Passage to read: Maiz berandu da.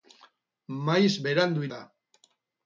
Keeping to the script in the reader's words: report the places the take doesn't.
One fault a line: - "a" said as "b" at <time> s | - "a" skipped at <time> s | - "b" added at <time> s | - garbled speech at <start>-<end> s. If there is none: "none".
none